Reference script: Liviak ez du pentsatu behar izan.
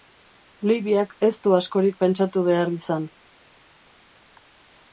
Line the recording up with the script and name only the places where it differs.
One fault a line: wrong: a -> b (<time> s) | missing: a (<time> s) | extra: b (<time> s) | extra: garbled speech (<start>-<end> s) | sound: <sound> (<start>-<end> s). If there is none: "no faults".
extra: askorik (1.6 s)